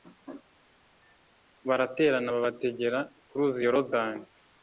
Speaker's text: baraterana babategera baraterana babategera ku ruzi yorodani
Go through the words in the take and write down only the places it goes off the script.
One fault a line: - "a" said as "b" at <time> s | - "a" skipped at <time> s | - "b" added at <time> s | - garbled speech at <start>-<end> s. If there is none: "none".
- "baraterana babategera" skipped at 3.0 s